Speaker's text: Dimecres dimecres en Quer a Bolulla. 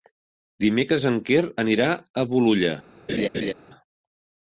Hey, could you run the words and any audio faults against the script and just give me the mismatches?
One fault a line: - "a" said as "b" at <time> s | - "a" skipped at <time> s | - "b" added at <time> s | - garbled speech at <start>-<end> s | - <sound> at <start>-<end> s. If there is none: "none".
- "dimecres" skipped at 1.1 s
- "anirà" added at 1.6 s
- laugh at 3.1-3.5 s